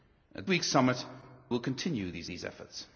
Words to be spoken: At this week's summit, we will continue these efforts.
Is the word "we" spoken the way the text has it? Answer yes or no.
no